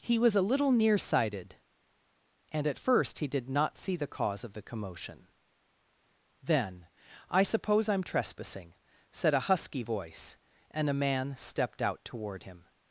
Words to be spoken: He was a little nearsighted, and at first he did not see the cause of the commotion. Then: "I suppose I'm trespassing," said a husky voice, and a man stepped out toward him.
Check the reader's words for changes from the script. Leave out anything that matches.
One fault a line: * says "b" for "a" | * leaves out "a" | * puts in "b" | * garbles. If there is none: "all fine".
all fine